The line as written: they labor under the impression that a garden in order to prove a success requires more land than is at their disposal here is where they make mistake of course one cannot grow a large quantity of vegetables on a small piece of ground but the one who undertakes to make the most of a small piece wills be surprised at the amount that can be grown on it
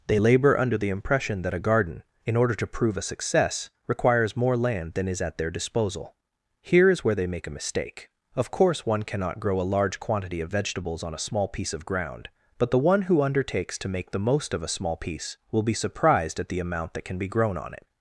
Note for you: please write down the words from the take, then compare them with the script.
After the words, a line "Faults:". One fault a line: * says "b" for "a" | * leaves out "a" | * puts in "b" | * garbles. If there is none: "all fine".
they labor under the impression that a garden in order to prove a success requires more land than is at their disposal here is where they make a mistake of course one cannot grow a large quantity of vegetables on a small piece of ground but the one who undertakes to make the most of a small piece will be surprised at the amount that can be grown on it
Faults:
* puts in "a"
* says "will" for "wills"